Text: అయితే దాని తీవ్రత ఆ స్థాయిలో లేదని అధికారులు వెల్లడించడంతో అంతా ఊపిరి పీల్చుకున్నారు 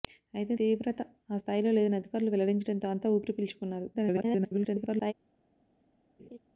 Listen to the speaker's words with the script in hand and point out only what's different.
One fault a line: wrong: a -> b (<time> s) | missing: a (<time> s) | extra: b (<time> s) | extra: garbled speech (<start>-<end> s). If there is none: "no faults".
missing: దాని (0.5 s)
extra: garbled speech (3.9-5.1 s)